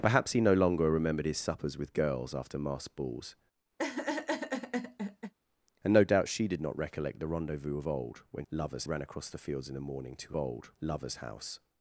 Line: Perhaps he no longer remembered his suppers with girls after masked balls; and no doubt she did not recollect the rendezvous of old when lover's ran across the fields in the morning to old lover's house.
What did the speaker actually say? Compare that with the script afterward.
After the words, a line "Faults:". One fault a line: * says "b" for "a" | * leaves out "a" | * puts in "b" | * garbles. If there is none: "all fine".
Perhaps he no longer remembered his suppers with girls after masked balls; and no doubt she did not recollect the rendezvous of old when lover's ran across the fields in the morning to old lover's house.
Faults:
all fine